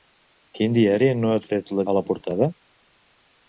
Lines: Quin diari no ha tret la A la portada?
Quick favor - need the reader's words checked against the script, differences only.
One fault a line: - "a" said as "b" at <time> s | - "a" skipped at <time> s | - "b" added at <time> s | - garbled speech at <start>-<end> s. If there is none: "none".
none